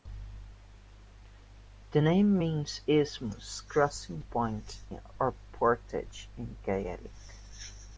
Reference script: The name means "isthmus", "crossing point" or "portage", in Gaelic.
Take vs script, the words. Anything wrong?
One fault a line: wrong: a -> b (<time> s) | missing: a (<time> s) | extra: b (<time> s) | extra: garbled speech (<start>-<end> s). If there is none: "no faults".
no faults